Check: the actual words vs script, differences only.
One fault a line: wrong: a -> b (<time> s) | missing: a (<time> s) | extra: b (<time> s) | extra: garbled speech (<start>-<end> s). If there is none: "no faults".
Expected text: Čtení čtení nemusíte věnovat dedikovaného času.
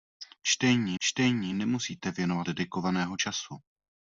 no faults